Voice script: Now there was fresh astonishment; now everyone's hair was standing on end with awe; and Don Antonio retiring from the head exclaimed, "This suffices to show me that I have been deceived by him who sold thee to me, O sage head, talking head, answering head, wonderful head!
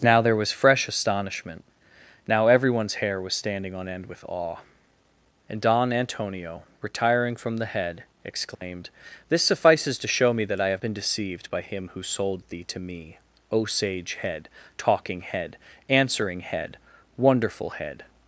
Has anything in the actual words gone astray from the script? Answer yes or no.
no